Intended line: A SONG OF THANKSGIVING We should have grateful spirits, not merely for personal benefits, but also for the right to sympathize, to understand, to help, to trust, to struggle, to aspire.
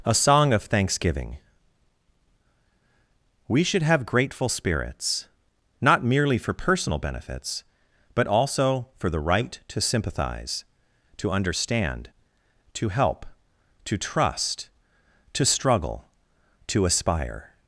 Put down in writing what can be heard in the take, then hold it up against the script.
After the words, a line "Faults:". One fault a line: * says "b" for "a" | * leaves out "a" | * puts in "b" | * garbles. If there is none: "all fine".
A SONG OF THANKSGIVING We should have grateful spirits, not merely for personal benefits, but also for the right to sympathize, to understand, to help, to trust, to struggle, to aspire.
Faults:
all fine